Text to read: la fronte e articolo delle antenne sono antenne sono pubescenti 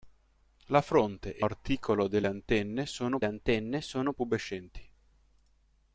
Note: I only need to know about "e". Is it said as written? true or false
true